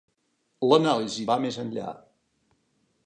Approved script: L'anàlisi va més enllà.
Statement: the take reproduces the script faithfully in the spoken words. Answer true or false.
true